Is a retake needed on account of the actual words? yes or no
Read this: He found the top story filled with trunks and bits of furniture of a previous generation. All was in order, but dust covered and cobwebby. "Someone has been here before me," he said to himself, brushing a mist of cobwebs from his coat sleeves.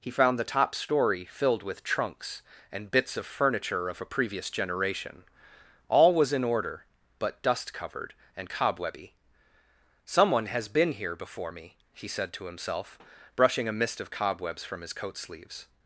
no